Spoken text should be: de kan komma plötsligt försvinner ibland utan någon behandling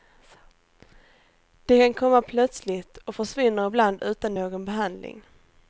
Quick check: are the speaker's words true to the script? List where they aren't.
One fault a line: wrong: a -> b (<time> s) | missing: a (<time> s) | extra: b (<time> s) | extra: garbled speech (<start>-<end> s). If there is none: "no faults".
extra: och (3.0 s)